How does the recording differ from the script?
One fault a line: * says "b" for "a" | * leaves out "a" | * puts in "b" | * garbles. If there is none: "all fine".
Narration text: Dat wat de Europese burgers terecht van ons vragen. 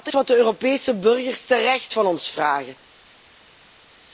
all fine